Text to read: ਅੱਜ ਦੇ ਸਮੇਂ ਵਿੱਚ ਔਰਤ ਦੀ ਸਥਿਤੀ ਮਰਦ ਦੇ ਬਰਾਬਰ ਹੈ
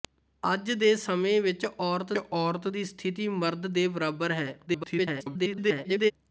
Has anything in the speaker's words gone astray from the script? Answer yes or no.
yes